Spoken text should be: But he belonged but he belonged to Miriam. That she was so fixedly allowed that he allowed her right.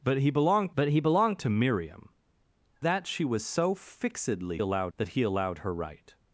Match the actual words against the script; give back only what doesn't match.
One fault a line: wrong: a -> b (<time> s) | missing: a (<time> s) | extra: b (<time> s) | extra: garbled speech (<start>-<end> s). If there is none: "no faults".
no faults